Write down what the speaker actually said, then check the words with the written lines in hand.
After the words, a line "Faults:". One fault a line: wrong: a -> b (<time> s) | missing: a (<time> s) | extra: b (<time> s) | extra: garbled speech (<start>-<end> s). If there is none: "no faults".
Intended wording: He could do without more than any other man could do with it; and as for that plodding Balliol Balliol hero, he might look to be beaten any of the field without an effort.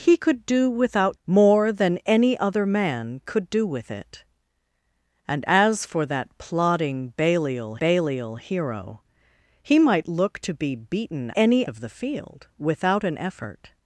He could do without more than any other man could do with it; and as for that plodding Balliol Balliol hero, he might look to be beaten any of the field without an effort.
Faults:
no faults